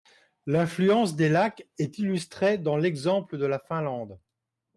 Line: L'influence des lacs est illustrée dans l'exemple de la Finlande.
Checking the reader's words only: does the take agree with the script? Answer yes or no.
yes